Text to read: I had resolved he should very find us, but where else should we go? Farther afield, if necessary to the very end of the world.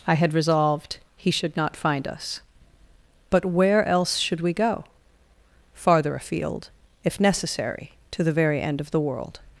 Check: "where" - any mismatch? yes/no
no